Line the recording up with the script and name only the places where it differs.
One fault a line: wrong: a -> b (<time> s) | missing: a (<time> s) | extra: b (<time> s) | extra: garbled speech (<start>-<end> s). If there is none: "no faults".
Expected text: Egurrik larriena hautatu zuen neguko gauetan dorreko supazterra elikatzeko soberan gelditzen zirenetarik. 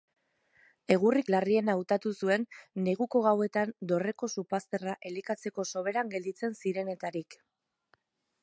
no faults